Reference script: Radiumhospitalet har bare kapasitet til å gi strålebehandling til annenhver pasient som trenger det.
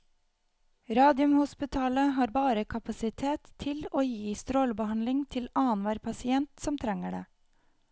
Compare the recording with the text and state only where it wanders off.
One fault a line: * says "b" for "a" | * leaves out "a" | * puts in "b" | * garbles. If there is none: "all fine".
all fine